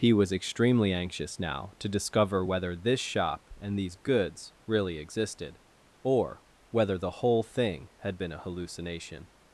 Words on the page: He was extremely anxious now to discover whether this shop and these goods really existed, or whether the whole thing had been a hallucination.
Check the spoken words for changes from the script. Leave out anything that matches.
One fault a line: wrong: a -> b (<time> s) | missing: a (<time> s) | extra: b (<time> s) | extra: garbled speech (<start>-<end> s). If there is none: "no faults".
no faults